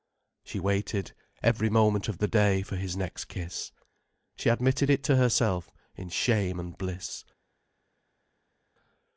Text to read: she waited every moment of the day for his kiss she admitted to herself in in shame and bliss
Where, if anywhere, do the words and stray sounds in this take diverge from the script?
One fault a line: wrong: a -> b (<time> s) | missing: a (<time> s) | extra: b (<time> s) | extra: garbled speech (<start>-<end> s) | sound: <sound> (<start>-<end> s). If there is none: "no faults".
extra: next (3.0 s)
extra: it (4.9 s)
missing: in (6.1 s)